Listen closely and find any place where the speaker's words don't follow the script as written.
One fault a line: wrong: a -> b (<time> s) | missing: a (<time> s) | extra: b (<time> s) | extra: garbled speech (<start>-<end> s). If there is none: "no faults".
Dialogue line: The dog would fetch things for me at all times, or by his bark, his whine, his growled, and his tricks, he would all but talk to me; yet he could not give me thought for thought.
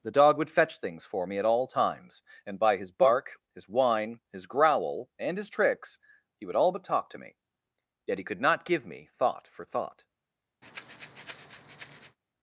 wrong: or -> and (2.4 s)
wrong: growled -> growl (4.5 s)